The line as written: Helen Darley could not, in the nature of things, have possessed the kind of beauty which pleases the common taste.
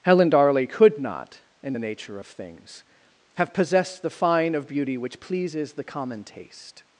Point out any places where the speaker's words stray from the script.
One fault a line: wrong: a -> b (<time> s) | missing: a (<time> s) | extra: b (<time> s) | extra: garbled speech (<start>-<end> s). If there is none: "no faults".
wrong: kind -> fine (4.1 s)